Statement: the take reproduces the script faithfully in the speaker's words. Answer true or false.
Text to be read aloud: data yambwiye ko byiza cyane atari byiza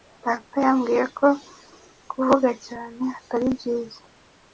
false